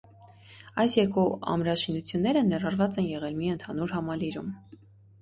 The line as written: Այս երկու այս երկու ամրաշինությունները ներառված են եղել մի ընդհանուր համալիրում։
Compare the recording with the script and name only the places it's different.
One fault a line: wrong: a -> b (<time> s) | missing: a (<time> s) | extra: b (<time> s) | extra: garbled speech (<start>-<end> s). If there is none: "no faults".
missing: այս երկու (1.2 s)